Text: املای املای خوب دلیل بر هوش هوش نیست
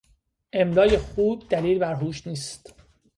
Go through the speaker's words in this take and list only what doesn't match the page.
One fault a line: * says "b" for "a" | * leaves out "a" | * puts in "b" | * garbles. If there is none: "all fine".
* leaves out "املای"
* leaves out "هوش"